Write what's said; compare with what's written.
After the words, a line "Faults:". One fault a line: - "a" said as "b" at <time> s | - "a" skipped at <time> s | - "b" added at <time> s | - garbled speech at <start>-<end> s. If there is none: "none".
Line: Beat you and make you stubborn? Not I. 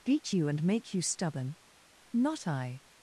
Beat you and make you stubborn? Not I.
Faults:
none